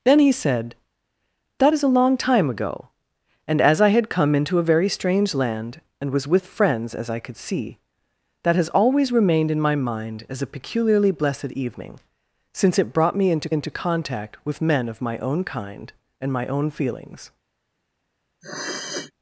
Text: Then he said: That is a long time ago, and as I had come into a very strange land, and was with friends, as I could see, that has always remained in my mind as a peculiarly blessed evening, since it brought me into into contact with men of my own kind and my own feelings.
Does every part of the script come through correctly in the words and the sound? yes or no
no